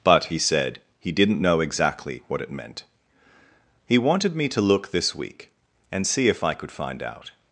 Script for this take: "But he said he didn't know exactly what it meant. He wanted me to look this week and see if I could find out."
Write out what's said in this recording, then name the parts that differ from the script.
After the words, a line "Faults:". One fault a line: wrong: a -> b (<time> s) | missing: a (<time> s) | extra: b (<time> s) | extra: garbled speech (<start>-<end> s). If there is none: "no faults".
"But he said he didn't know exactly what it meant. He wanted me to look this week and see if I could find out."
Faults:
no faults